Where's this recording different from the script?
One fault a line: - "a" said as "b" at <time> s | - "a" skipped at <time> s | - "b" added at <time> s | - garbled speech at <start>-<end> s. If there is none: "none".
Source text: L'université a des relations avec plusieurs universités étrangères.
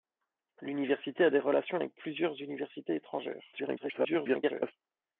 - garbled speech at 3.5-4.7 s